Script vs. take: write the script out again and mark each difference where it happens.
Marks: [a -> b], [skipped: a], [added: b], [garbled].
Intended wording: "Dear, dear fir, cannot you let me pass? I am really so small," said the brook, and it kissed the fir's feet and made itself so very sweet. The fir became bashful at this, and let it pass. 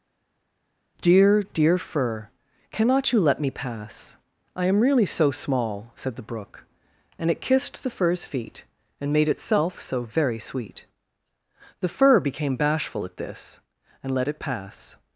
"Dear, dear fir, cannot you let me pass? I am really so small," said the brook, and it kissed the fir's feet and made itself so very sweet. The fir became bashful at this, and let it pass.